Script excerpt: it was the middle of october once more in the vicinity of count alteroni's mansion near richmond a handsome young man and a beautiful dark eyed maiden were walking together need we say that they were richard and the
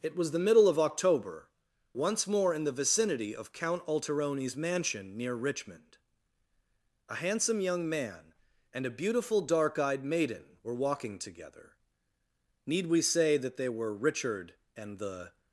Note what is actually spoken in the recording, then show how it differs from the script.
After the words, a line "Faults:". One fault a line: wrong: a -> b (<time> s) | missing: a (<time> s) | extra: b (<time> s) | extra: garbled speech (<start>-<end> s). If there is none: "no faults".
it was the middle of october once more in the vicinity of count alteroni's mansion near richmond a handsome young man and a beautiful dark eyed maiden were walking together need we say that they were richard and the
Faults:
no faults